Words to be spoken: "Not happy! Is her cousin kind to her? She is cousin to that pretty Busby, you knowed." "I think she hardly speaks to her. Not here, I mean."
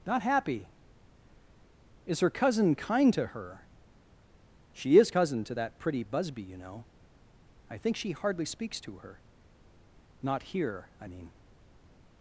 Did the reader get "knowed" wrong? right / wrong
wrong